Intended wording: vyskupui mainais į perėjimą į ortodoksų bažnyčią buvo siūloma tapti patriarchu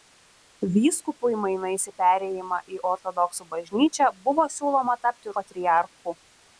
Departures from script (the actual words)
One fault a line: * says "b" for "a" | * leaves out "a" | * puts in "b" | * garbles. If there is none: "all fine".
all fine